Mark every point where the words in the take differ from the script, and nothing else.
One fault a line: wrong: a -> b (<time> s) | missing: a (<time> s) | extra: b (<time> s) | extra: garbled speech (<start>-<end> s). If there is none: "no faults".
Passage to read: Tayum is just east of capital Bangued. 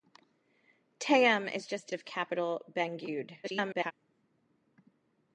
missing: east (1.9 s)
extra: garbled speech (3.4-3.9 s)